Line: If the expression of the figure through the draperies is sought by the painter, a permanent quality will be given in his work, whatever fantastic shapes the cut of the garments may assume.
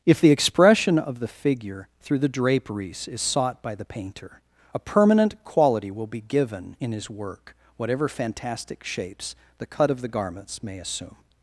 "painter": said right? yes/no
yes